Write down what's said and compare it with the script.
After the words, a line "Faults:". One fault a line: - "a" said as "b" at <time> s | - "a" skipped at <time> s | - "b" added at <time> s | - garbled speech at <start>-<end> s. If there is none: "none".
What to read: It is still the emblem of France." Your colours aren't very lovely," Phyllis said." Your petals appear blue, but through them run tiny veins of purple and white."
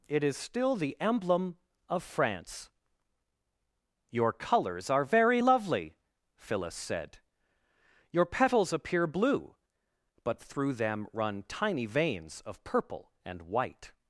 It is still the emblem of France." Your colours are very lovely," Phyllis said." Your petals appear blue, but through them run tiny veins of purple and white."
Faults:
- "aren't" said as "are" at 4.9 s